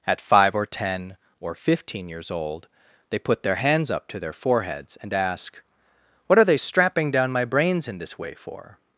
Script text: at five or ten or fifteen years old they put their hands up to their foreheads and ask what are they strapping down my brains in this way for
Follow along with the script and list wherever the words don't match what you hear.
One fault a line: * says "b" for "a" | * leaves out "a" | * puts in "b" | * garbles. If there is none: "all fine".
all fine